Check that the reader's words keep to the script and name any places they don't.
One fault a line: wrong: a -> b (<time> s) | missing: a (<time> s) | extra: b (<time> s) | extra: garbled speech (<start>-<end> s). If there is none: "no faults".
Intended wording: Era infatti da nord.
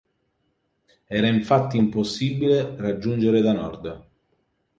extra: impossibile raggiungere (1.8 s)